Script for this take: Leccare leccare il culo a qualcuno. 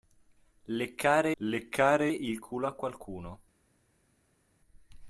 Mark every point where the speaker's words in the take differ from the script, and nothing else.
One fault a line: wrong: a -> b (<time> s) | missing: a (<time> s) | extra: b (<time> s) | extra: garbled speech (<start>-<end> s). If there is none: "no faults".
no faults